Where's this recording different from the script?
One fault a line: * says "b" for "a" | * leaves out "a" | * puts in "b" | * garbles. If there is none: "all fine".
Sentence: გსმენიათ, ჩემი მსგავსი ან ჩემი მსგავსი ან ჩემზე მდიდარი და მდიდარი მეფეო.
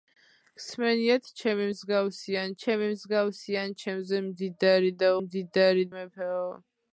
all fine